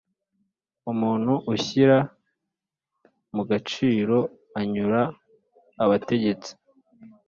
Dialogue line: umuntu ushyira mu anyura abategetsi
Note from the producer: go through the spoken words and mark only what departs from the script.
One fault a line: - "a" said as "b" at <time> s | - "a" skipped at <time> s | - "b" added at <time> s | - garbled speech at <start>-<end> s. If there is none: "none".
- "gaciro" added at 3.5 s